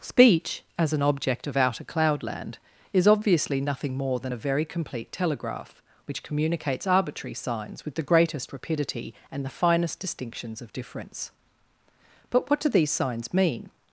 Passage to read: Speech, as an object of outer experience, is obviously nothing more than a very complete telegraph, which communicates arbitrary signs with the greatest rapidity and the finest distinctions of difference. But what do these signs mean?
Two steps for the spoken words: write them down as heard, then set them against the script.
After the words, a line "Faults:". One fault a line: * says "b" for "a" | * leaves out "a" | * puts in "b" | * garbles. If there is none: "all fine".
Speech, as an object of outer cloudland, is obviously nothing more than a very complete telegraph, which communicates arbitrary signs with the greatest rapidity and the finest distinctions of difference. But what do these signs mean?
Faults:
* says "cloudland" for "experience"